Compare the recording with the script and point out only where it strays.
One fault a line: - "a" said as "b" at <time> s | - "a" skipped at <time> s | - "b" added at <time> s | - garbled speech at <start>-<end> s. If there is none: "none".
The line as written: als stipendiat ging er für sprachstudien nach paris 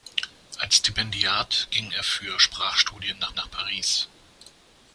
- "nach" added at 3.3 s